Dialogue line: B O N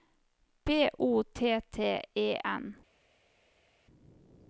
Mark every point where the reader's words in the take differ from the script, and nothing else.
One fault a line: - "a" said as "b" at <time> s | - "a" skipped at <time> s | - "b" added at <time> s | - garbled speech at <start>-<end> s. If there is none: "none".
- "T T E" added at 1.2 s